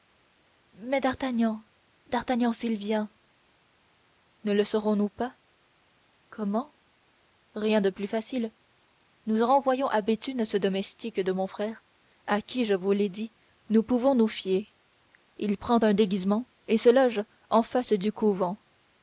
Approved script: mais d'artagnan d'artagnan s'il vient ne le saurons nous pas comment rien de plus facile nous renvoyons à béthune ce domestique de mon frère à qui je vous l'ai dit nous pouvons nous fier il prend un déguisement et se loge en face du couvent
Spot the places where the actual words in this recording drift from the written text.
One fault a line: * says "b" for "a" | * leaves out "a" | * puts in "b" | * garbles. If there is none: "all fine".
all fine